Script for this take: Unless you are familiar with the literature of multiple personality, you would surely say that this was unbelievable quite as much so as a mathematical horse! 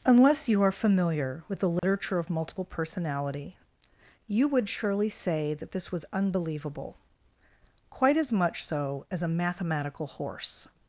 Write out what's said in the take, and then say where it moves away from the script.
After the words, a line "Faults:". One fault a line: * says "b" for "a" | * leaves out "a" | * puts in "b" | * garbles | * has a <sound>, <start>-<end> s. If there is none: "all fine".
Unless you are familiar with the literature of multiple personality, you would surely say that this was unbelievable quite as much so as a mathematical horse!
Faults:
* has a dropout, 1.8-1.8 s